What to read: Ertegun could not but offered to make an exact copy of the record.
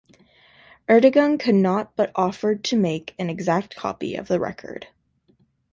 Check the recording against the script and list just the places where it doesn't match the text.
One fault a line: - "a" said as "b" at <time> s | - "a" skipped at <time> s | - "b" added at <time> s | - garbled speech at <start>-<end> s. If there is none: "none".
none